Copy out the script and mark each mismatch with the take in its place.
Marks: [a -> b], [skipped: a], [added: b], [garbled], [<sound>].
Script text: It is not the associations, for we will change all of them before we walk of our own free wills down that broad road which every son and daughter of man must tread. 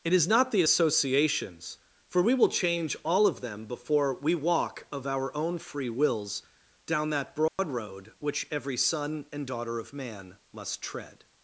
It is not the associations, for we will change all of them before we walk of our own free wills down that broad [dropout] road which every son and daughter of man must tread.